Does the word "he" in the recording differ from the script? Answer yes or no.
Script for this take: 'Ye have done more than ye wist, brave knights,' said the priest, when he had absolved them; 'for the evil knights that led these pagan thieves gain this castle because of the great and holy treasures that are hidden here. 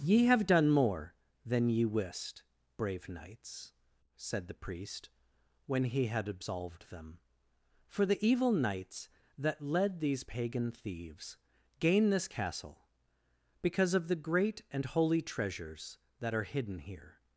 no